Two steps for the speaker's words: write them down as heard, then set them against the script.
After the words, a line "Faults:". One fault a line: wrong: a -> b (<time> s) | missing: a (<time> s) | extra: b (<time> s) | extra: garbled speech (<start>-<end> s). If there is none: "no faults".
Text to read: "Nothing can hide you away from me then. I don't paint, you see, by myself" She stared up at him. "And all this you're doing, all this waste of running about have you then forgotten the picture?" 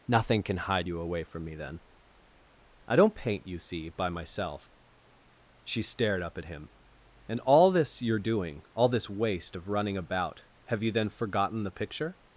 "Nothing can hide you away from me then. I don't paint, you see, by myself" She stared up at him. "And all this you're doing, all this waste of running about have you then forgotten the picture?"
Faults:
no faults